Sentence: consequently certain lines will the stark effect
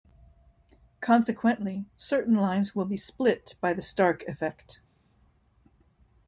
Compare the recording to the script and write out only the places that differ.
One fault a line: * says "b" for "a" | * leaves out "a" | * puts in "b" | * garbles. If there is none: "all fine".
* puts in "be split by"